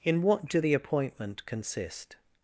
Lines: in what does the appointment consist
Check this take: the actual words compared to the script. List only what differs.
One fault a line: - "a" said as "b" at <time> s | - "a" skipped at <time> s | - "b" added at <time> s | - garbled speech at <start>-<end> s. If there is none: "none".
- "does" said as "do" at 0.5 s